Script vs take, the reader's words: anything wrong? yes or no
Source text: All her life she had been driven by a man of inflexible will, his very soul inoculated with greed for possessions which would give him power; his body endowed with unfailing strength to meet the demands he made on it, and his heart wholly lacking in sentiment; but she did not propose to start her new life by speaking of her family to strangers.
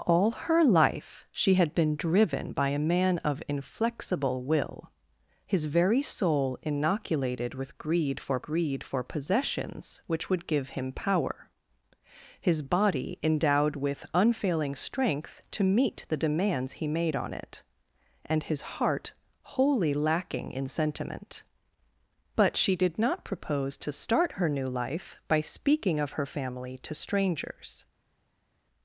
yes